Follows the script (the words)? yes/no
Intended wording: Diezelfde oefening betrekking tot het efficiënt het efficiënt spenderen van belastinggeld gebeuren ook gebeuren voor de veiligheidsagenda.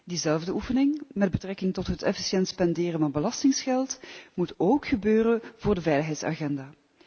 no